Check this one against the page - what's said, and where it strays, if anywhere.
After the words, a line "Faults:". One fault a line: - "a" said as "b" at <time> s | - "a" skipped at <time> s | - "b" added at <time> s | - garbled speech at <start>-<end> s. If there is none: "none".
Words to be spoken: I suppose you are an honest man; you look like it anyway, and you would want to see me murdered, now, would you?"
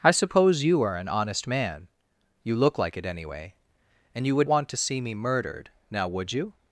I suppose you are an honest man; you look like it anyway, and you would want to see me murdered, now, would you?"
Faults:
none